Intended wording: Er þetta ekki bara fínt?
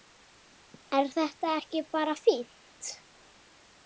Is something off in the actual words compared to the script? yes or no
no